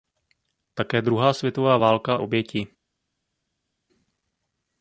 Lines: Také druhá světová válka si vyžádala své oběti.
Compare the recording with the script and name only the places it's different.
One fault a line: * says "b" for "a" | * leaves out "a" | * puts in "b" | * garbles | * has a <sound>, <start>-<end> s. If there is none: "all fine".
* leaves out "si vyžádala své"